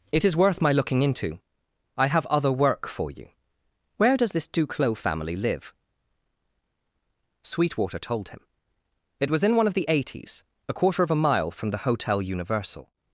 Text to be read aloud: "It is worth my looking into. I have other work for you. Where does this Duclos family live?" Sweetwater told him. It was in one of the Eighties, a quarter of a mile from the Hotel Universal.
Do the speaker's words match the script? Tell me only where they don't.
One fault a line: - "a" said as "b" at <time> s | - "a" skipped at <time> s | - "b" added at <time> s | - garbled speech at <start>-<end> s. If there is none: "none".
none